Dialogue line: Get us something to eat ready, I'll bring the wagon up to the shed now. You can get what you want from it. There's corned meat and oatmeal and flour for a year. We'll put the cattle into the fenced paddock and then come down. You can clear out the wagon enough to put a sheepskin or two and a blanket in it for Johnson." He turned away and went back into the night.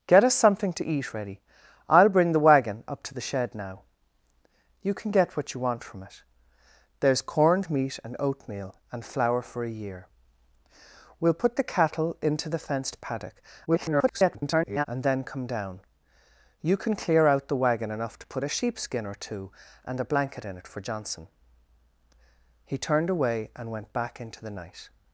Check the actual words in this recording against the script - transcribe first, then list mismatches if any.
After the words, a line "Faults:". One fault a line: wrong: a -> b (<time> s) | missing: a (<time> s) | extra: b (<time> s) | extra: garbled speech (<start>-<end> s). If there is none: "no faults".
Get us something to eat ready, I'll bring the wagon up to the shed now. You can get what you want from it. There's corned meat and oatmeal and flour for a year. We'll put the cattle into the fenced paddock [garbled] and then come down. You can clear out the wagon enough to put a sheepskin or two and a blanket in it for Johnson." He turned away and went back into the night.
Faults:
extra: garbled speech (13.7-14.9 s)